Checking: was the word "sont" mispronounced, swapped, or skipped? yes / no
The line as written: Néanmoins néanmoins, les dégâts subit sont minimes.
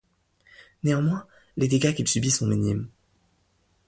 no